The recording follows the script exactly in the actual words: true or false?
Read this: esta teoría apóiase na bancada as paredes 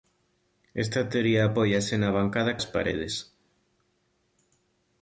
true